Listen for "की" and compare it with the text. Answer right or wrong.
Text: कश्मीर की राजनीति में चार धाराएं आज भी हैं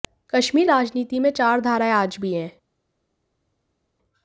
wrong